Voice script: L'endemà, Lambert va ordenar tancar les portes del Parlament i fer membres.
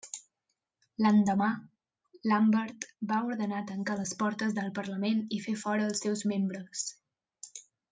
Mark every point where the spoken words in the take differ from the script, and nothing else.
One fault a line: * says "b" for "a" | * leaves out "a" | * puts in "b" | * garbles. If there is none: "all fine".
* puts in "fora els seus"